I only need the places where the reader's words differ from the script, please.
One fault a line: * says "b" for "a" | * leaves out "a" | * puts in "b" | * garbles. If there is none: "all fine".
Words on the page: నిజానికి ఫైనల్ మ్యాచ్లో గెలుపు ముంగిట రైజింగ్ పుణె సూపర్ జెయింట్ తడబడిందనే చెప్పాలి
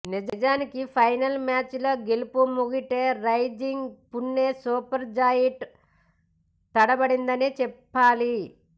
all fine